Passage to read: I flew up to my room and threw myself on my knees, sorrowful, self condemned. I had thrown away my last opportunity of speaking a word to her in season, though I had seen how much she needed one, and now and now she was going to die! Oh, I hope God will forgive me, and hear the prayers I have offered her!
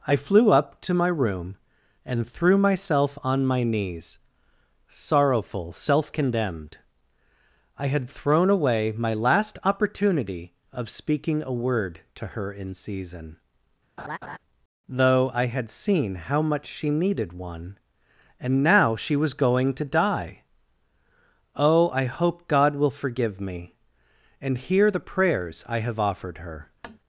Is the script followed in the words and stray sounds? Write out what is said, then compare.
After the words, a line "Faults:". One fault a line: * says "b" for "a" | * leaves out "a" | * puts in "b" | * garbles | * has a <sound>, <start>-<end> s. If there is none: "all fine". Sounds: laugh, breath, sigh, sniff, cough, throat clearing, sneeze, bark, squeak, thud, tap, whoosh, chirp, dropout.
I flew up to my room and threw myself on my knees, sorrowful, self condemned. I had thrown away my last opportunity of speaking a word to her in season, though I had seen how much she needed one, and now she was going to die! Oh, I hope God will forgive me, and hear the prayers I have offered her!
Faults:
* has a laugh, 14.0-14.4 s
* leaves out "and now"
* has a tap, 26.8-27.0 s